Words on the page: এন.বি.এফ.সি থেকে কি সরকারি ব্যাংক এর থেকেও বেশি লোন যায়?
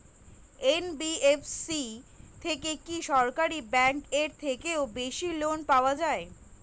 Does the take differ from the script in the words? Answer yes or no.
yes